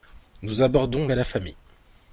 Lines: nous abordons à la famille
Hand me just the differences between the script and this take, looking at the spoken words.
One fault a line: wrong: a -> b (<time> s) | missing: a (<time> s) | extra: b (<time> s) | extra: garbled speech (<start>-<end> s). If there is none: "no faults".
no faults